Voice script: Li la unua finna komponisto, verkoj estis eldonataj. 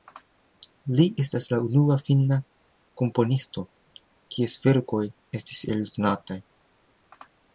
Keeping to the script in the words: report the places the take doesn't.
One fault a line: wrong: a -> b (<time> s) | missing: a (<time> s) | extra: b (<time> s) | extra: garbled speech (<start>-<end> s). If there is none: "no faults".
extra: estas (1.2 s)
extra: kies (4.4 s)